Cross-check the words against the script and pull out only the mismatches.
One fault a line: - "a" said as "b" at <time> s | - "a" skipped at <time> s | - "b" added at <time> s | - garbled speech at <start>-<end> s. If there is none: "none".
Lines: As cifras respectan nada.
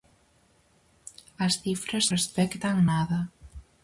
none